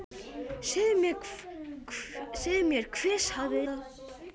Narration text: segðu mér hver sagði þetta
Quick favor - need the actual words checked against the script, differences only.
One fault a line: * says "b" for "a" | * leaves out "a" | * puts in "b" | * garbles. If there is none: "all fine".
all fine